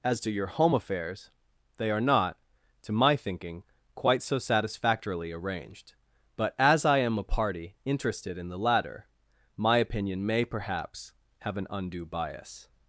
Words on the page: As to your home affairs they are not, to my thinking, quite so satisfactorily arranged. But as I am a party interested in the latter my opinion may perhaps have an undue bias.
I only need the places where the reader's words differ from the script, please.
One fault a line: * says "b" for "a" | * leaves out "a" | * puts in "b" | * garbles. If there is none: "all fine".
all fine